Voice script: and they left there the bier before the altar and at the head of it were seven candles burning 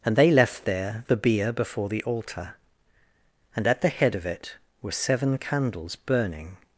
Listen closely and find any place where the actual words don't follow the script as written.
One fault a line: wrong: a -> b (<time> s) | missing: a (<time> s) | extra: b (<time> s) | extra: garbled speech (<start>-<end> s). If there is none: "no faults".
no faults